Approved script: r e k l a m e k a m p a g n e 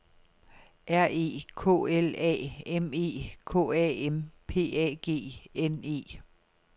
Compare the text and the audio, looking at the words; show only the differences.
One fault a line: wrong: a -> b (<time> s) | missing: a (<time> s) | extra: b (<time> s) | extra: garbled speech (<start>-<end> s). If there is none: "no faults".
no faults